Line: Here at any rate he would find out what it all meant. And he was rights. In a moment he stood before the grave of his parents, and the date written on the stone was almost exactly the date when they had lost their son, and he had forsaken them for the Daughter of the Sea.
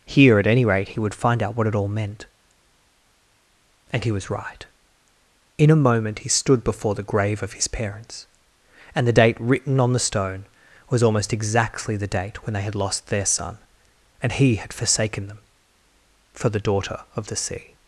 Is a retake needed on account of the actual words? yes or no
yes